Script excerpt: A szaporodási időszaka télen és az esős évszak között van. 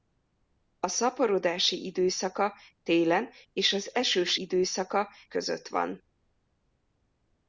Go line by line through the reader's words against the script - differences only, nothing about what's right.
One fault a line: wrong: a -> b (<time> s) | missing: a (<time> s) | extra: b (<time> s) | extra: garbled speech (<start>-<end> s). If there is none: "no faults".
wrong: évszak -> időszaka (4.4 s)